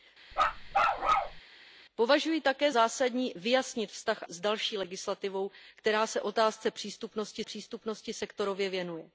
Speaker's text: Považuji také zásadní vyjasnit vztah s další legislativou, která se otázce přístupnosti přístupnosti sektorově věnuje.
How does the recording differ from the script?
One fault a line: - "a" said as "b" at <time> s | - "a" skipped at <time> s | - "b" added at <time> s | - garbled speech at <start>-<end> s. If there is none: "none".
none